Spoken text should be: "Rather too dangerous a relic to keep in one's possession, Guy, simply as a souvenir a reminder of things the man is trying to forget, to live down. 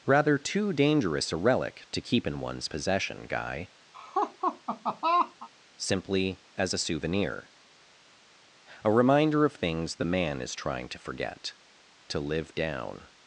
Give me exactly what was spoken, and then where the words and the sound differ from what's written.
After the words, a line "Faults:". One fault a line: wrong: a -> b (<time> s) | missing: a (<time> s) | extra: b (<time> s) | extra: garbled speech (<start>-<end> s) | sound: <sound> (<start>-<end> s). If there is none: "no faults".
"Rather too dangerous a relic to keep in one's possession, Guy, simply as a souvenir a reminder of things the man is trying to forget, to live down.
Faults:
sound: laugh (3.9-5.5 s)